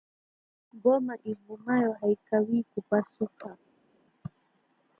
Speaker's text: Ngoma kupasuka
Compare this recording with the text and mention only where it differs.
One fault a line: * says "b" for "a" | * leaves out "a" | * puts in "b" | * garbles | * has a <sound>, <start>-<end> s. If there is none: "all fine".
* puts in "ivumayo haikawii"